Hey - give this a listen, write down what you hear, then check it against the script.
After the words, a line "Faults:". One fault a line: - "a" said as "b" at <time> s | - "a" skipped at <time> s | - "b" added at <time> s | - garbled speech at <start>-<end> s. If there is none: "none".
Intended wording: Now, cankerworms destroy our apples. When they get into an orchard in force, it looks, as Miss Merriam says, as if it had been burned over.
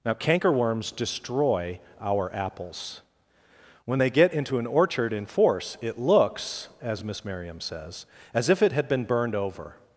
Now, cankerworms destroy our apples. When they get into an orchard in force, it looks, as Miss Merriam says, as if it had been burned over.
Faults:
none